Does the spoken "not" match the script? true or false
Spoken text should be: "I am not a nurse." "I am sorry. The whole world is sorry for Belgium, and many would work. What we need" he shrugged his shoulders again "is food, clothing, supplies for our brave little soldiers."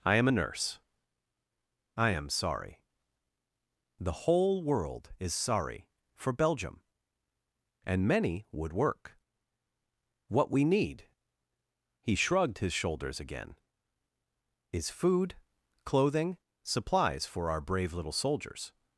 false